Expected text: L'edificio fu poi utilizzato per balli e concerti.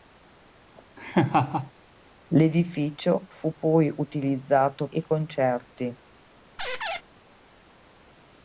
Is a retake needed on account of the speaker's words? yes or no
yes